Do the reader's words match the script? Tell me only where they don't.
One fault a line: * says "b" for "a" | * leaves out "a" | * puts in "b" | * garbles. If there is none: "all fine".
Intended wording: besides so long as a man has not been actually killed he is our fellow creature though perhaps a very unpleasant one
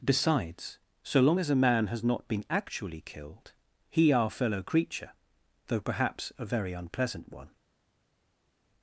* leaves out "is"